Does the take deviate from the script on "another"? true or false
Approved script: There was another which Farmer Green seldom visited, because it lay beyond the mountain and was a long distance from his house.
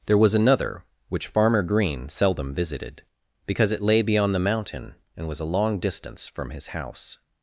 false